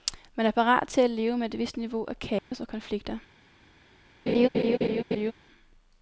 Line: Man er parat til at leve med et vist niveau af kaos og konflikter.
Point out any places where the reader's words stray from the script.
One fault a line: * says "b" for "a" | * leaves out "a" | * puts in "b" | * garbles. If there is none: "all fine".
all fine